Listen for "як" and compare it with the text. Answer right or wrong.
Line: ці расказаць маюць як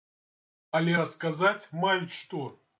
wrong